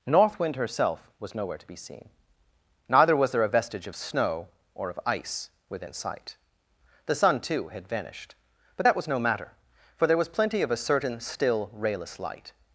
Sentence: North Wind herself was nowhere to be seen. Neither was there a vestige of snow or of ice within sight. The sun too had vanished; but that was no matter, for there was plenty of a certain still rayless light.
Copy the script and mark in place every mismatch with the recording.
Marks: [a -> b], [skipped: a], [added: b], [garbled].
North Wind herself was nowhere to be seen. Neither was there a vestige of snow or of ice within sight. The sun too had vanished; but that was no matter, for there was plenty of a certain still rayless light.